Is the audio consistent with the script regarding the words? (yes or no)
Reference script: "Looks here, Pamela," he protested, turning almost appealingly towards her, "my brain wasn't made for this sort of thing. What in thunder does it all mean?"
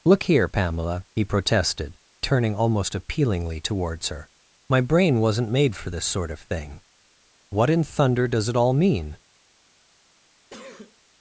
no